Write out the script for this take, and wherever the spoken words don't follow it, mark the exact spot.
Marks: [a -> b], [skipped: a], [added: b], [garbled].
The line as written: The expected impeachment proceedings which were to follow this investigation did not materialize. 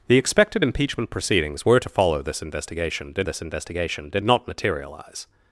The expected impeachment proceedings [skipped: which] were to follow this investigation did [added: this investigation did] not materialize.